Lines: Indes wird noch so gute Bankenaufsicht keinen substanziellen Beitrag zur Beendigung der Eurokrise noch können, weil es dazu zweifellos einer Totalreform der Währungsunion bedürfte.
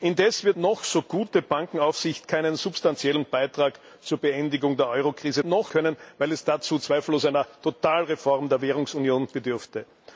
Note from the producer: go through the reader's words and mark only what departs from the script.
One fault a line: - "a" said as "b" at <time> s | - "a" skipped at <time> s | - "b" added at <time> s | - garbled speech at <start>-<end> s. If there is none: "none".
none